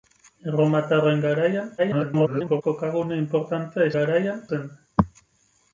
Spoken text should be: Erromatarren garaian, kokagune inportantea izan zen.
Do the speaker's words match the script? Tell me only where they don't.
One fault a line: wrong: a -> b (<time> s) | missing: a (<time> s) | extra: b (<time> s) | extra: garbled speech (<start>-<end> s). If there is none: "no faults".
extra: garbled speech (1.8-2.6 s)
wrong: izan -> garaian (4.0 s)